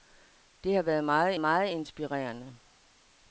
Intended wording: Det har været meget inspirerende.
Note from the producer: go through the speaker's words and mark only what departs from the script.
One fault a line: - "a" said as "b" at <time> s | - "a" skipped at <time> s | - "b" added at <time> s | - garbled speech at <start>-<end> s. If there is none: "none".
- "meget" added at 1.4 s